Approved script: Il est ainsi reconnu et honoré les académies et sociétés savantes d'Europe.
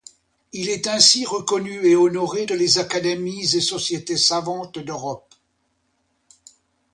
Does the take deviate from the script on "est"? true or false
false